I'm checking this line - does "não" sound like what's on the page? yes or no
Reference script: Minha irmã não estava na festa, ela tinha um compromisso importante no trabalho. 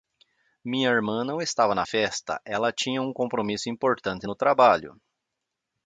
yes